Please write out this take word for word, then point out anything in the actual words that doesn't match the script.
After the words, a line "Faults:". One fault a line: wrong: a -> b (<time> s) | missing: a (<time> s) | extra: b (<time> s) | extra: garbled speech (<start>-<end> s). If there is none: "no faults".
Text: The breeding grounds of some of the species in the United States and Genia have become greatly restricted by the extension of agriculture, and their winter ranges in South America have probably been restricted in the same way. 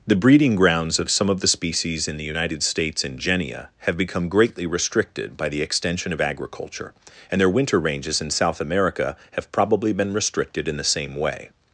The breeding grounds of some of the species in the United States and Genia have become greatly restricted by the extension of agriculture, and their winter ranges in South America have probably been restricted in the same way.
Faults:
no faults